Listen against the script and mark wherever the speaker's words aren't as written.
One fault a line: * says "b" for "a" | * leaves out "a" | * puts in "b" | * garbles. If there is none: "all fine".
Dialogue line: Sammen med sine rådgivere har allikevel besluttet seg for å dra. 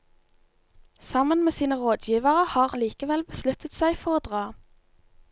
all fine